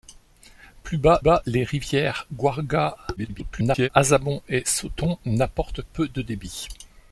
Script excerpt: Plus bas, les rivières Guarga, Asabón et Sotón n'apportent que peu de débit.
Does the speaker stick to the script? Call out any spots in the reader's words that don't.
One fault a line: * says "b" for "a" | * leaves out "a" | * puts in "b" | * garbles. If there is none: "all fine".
* puts in "bas"
* garbles
* leaves out "que"